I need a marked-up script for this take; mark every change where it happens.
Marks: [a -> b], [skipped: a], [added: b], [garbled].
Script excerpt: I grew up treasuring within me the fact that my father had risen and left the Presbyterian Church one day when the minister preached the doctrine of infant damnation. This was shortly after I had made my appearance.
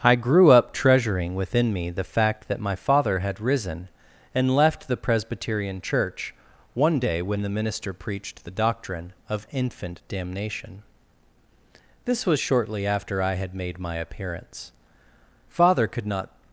I grew up treasuring within me the fact that my father had risen and left the Presbyterian Church one day when the minister preached the doctrine of infant damnation. This was shortly after I had made my appearance. [added: Father could not]